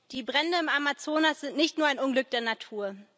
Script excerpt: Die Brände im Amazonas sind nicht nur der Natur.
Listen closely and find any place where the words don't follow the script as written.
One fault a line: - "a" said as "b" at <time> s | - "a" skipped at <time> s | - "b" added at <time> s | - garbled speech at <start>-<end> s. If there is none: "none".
- "ein Unglück" added at 1.9 s